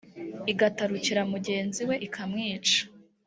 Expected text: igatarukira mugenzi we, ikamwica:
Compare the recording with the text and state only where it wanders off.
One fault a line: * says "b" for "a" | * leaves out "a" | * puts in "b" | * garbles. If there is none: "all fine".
all fine